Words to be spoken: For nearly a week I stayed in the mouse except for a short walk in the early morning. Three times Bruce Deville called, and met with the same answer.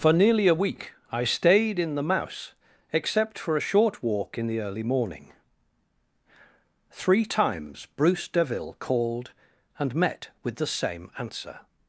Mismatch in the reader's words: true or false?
false